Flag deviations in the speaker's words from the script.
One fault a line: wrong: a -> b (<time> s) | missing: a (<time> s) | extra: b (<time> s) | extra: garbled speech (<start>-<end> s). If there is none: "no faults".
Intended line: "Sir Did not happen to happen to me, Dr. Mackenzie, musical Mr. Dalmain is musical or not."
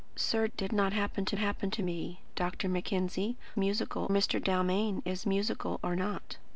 no faults